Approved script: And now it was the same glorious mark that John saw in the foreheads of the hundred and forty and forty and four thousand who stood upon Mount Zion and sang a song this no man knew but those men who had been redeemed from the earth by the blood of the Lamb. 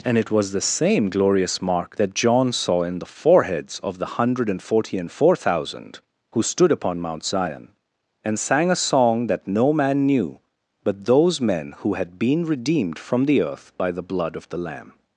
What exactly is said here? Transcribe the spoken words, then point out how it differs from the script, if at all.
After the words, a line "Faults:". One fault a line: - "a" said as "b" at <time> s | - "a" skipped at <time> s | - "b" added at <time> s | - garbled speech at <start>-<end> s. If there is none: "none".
And it was the same glorious mark that John saw in the foreheads of the hundred and forty and four thousand who stood upon Mount Zion and sang a song that no man knew but those men who had been redeemed from the earth by the blood of the Lamb.
Faults:
- "now" skipped at 0.2 s
- "forty and" skipped at 5.1 s
- "this" said as "that" at 9.3 s